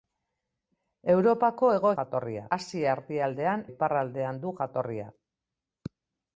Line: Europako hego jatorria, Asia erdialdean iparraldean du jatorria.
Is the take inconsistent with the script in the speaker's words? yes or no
no